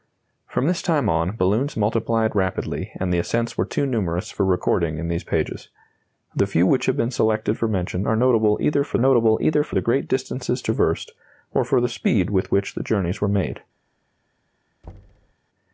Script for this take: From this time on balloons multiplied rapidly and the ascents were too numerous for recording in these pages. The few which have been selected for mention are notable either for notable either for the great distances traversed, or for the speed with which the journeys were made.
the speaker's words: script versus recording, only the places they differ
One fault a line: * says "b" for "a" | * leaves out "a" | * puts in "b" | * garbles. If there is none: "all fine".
all fine